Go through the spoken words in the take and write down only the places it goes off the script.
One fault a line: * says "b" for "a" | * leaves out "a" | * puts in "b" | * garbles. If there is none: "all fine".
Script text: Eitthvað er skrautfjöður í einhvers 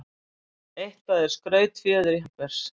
all fine